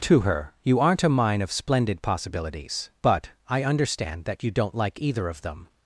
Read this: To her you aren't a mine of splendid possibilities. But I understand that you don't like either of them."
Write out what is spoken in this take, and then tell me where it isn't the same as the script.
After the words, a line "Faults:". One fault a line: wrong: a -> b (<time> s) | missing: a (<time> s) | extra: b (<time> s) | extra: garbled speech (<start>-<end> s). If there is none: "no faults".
To her you aren't a mine of splendid possibilities. But I understand that you don't like either of them."
Faults:
no faults